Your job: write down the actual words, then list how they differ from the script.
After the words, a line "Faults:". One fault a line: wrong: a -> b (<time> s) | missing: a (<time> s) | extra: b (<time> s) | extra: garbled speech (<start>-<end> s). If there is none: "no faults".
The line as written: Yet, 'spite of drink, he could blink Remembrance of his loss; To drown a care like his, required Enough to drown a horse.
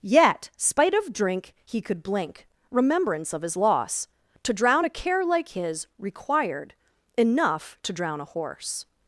Yet, 'spite of drink, he could blink Remembrance of his loss; To drown a care like his, required Enough to drown a horse.
Faults:
no faults